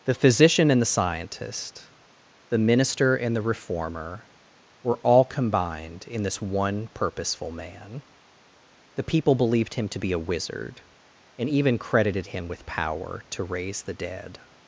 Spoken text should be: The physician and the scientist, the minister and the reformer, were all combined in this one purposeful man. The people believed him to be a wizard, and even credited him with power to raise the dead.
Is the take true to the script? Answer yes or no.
yes